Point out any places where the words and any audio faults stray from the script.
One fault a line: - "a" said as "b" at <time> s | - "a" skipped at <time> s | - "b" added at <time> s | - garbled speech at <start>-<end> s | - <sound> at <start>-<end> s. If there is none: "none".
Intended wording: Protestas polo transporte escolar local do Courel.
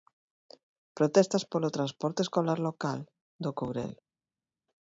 none